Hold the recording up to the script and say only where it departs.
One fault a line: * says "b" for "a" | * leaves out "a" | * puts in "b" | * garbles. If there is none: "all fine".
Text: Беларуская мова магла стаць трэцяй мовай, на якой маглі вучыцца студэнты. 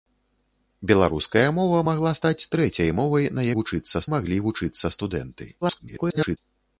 * says "вучыцца" for "якой"
* garbles